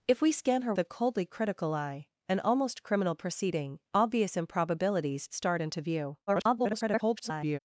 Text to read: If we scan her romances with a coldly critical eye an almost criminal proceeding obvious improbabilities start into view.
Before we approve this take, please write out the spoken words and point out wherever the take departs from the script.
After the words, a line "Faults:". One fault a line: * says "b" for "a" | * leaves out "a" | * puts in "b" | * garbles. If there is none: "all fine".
If we scan her a coldly critical eye an almost criminal proceeding obvious improbabilities start into view. [garbled]
Faults:
* leaves out "romances with"
* garbles